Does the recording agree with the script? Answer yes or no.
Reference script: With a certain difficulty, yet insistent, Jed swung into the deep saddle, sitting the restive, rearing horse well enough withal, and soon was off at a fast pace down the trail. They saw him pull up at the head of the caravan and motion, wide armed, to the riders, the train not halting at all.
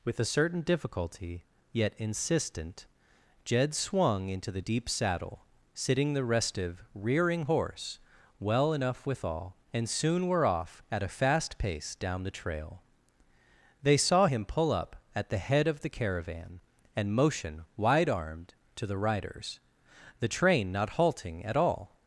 no